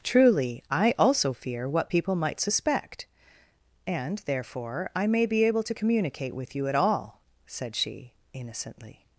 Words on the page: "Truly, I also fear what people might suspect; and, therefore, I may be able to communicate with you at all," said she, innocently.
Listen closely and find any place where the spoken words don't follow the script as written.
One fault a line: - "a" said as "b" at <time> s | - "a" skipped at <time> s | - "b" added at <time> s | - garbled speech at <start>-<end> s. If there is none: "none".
none